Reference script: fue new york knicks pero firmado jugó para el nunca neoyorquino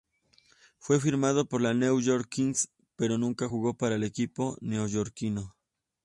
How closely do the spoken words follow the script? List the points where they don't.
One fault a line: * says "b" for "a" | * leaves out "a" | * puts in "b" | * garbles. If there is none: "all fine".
* puts in "firmado por los"
* says "nunca" for "firmado"
* says "equipo" for "nunca"